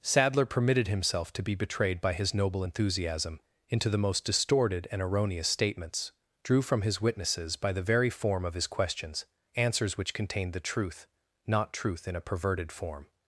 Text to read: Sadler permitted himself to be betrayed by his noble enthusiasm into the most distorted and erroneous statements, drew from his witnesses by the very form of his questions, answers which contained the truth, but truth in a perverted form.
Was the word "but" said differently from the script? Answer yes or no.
yes